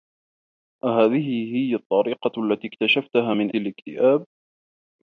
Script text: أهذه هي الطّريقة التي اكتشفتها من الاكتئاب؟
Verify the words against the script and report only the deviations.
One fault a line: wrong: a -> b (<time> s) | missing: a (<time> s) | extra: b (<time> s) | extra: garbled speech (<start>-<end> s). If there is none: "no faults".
no faults